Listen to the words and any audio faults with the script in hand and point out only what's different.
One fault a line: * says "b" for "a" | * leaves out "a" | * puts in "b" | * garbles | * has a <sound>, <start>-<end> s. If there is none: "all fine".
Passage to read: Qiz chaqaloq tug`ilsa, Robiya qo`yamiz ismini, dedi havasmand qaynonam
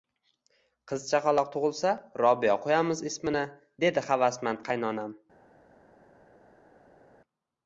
all fine